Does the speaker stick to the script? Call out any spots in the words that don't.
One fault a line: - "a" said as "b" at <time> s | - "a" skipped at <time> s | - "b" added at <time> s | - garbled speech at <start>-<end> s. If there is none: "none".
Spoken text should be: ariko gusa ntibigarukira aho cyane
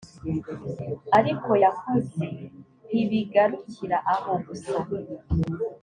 - "gusa" said as "yakoze" at 1.6 s
- "cyane" said as "gusa" at 4.5 s